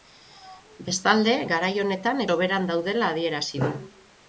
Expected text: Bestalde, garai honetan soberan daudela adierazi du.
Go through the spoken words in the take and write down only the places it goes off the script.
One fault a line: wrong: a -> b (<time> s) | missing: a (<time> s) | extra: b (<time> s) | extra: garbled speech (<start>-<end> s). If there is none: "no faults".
no faults